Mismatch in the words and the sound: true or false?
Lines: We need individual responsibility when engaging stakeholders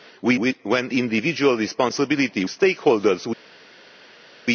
true